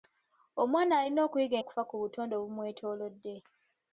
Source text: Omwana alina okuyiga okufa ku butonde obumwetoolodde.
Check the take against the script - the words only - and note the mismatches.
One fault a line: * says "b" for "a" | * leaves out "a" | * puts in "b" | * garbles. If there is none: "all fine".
all fine